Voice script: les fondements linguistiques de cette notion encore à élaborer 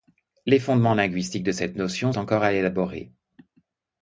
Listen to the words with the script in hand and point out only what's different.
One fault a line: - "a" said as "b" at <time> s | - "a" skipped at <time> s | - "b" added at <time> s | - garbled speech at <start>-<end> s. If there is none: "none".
none